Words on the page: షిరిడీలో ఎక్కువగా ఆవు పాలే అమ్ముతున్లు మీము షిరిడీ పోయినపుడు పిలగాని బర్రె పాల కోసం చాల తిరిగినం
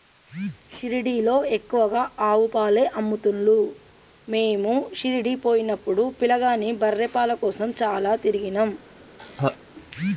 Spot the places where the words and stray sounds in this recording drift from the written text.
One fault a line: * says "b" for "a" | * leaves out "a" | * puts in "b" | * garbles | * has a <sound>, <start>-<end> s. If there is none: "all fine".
* has a laugh, 9.2-9.6 s